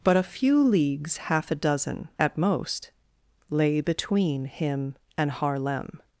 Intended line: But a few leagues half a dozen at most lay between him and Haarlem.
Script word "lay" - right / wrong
right